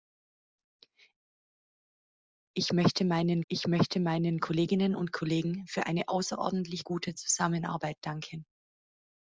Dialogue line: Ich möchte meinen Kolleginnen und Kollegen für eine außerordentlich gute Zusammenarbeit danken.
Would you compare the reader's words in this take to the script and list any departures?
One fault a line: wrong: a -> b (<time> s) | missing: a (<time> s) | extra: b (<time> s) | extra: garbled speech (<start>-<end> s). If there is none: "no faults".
extra: ich möchte meinen (3.5 s)